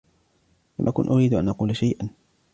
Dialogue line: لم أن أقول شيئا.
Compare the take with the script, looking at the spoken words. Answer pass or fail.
fail